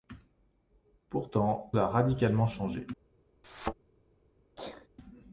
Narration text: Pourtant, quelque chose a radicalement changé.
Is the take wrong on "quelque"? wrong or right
wrong